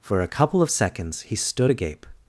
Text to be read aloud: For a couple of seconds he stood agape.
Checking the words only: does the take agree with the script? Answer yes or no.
yes